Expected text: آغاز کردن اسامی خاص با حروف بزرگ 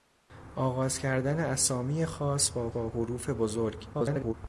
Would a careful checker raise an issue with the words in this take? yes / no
yes